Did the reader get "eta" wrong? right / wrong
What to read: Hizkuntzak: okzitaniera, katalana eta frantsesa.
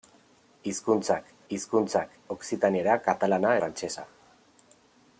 wrong